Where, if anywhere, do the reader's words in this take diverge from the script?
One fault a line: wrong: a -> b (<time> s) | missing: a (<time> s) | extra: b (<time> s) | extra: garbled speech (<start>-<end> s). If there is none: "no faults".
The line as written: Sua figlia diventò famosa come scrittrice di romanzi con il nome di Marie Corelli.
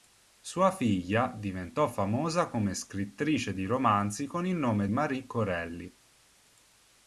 missing: di (4.9 s)